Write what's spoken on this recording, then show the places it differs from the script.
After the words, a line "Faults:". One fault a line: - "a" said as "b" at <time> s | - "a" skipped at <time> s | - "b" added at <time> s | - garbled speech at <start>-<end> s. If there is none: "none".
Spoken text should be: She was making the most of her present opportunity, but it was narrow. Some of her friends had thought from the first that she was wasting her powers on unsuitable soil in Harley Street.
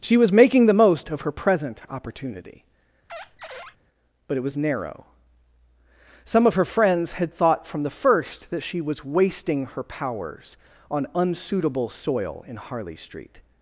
She was making the most of her present opportunity, but it was narrow. Some of her friends had thought from the first that she was wasting her powers on unsuitable soil in Harley Street.
Faults:
none